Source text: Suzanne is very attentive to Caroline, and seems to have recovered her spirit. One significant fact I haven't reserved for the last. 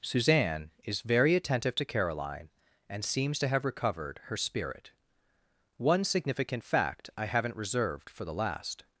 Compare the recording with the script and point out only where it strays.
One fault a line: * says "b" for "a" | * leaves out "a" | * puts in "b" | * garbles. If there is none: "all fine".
all fine